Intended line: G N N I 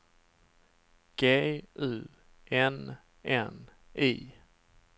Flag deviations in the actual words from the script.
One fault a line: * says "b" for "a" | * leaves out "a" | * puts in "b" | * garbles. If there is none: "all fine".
* puts in "U"